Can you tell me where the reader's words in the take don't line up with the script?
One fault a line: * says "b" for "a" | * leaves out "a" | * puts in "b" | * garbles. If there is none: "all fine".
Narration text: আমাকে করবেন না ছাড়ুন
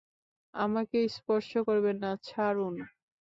* puts in "স্পর্শ"